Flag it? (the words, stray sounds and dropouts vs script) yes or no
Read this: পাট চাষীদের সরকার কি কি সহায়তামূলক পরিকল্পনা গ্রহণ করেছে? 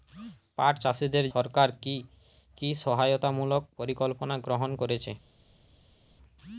no